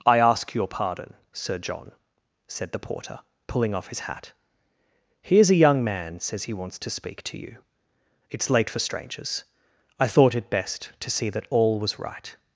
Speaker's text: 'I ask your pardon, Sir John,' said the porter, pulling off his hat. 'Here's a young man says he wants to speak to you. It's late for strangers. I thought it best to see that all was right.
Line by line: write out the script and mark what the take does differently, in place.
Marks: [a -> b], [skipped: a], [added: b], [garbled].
'I ask your pardon, Sir John,' said the porter, pulling off his hat. 'Here's a young man says he wants to speak to you. It's late for strangers. I thought it best to see that all was right.